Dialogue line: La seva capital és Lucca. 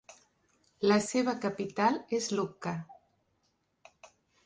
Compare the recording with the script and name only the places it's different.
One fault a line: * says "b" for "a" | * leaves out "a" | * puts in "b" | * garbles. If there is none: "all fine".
all fine